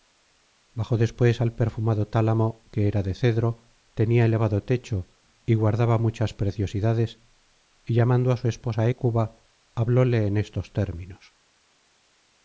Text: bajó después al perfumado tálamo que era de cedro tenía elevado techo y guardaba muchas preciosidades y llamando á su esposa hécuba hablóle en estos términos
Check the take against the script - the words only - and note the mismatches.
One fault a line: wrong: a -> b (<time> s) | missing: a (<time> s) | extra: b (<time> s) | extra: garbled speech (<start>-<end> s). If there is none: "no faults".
no faults